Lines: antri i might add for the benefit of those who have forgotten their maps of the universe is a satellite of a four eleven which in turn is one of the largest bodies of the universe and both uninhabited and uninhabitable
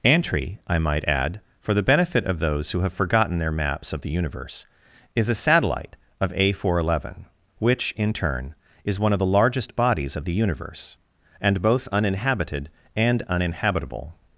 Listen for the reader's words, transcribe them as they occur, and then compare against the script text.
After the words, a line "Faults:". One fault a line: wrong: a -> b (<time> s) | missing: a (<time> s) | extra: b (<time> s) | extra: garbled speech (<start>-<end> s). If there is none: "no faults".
antri i might add for the benefit of those who have forgotten their maps of the universe is a satellite of a four eleven which in turn is one of the largest bodies of the universe and both uninhabited and uninhabitable
Faults:
no faults